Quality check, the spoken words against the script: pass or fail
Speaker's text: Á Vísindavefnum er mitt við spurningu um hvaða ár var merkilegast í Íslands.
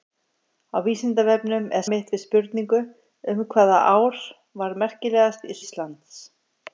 pass